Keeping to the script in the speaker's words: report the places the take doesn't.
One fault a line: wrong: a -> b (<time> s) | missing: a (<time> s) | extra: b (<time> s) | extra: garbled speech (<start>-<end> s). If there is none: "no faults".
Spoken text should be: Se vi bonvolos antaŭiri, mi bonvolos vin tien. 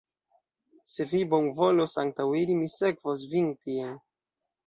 wrong: bonvolos -> sekvos (2.8 s)